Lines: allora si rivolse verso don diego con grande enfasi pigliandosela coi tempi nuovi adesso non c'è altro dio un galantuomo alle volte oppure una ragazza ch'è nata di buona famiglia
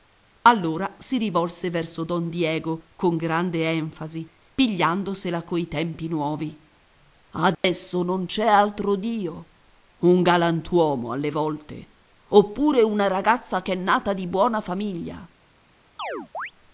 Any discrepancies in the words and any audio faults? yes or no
yes